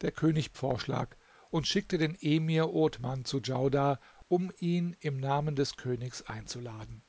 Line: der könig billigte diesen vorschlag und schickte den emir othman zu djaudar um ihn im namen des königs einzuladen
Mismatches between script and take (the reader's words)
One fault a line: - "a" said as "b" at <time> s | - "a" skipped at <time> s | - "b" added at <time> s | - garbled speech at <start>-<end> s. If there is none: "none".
- "billigte diesen" skipped at 0.6 s